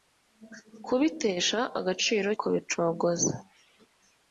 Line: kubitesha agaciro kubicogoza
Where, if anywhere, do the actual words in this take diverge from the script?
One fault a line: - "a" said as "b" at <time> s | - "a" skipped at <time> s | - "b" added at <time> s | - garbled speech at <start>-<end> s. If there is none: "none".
none